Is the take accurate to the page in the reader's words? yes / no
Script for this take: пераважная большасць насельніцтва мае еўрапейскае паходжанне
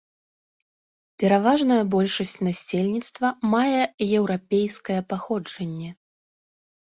yes